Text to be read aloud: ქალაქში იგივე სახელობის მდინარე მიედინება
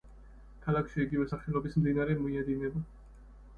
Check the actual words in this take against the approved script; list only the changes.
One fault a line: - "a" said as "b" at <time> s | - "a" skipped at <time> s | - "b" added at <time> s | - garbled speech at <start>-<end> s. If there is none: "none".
none